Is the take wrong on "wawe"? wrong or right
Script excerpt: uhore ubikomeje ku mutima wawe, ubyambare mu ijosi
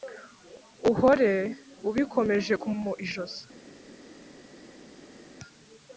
wrong